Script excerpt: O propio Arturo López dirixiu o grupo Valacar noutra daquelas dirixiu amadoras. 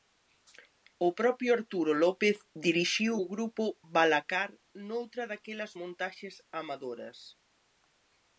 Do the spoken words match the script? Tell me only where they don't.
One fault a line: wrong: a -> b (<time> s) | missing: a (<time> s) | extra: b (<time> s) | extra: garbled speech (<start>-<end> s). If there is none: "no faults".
wrong: dirixiu -> montaxes (5.8 s)